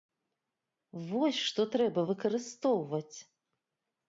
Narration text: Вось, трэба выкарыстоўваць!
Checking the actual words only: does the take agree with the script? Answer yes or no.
no